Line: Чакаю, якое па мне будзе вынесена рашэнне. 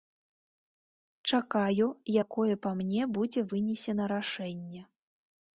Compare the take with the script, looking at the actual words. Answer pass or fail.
pass